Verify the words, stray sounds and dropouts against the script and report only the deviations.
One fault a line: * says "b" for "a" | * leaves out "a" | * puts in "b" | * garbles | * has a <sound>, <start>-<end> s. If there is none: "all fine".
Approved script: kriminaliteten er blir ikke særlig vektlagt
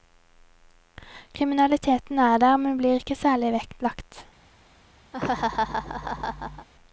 * puts in "der men"
* has a laugh, 5.1-6.7 s